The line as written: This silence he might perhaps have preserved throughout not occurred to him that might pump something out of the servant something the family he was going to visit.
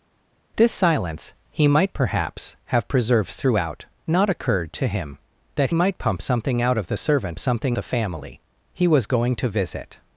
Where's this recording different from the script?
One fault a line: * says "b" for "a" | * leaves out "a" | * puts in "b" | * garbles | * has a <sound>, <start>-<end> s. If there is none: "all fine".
all fine